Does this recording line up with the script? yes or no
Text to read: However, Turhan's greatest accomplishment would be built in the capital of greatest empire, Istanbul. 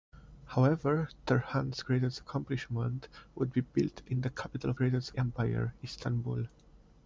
yes